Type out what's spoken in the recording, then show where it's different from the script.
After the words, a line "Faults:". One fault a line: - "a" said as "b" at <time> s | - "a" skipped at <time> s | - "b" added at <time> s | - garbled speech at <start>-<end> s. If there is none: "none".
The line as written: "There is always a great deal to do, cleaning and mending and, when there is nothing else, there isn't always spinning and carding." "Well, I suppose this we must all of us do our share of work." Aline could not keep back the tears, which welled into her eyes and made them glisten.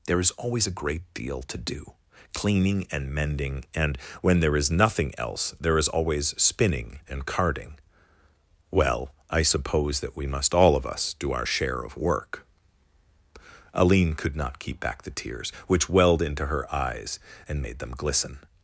"There is always a great deal to do, cleaning and mending and, when there is nothing else, there is always spinning and carding." "Well, I suppose that we must all of us do our share of work." Aline could not keep back the tears, which welled into her eyes and made them glisten.
Faults:
- "isn't" said as "is" at 5.8 s
- "this" said as "that" at 10.0 s